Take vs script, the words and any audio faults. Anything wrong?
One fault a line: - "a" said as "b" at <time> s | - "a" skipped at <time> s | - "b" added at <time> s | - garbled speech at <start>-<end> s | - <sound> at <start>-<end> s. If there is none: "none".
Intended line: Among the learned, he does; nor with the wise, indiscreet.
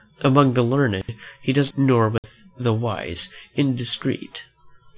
- dropout at 1.0-1.1 s
- dropout at 2.2-2.2 s